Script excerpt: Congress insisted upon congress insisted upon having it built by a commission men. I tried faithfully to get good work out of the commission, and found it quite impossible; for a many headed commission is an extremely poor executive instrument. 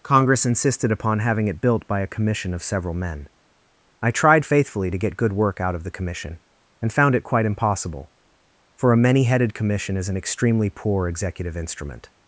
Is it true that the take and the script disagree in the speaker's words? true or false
true